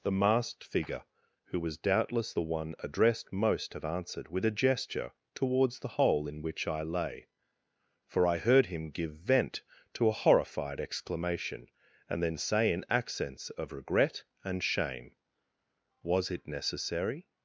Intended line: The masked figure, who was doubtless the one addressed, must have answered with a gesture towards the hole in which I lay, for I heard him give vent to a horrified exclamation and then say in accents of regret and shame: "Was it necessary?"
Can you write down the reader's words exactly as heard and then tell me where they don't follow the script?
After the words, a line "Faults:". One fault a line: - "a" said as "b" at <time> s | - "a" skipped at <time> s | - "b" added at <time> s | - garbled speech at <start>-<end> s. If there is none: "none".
The masked figure, who was doubtless the one addressed, most have answered with a gesture towards the hole in which I lay, for I heard him give vent to a horrified exclamation and then say in accents of regret and shame: "Was it necessary?"
Faults:
- "must" said as "most" at 3.3 s